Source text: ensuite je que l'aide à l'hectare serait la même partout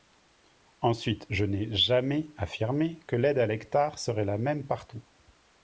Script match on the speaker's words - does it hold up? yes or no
no